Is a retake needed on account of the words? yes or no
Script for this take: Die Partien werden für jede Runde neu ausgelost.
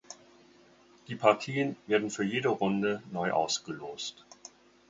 no